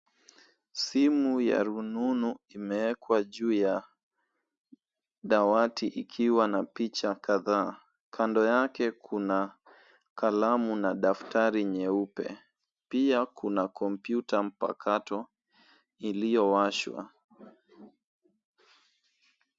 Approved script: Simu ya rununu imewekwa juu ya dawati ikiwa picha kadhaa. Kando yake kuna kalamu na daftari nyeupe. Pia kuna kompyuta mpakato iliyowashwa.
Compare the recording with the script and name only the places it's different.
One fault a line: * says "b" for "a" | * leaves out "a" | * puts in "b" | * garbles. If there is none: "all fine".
* puts in "na"